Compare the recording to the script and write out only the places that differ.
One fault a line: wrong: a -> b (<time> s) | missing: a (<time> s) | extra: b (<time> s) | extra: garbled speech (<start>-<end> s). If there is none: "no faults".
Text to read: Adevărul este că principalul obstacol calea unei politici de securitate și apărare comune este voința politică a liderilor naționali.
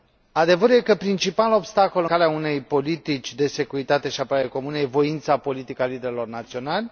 no faults